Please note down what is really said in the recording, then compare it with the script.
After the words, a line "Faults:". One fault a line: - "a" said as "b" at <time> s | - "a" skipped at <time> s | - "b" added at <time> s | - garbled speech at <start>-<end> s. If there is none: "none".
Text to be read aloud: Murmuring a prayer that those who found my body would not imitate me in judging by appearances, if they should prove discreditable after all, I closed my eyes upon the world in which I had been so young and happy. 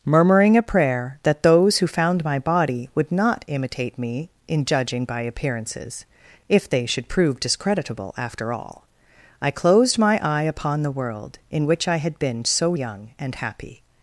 Murmuring a prayer that those who found my body would not imitate me in judging by appearances, if they should prove discreditable after all, I closed my eye upon the world in which I had been so young and happy.
Faults:
- "eyes" said as "eye" at 10.2 s